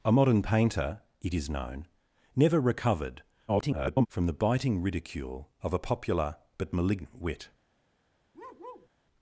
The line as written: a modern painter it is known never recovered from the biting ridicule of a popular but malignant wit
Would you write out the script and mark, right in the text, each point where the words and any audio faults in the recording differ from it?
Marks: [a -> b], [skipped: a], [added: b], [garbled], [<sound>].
a modern painter it is known never recovered [garbled] from the biting ridicule of a popular but malignant wit [bark]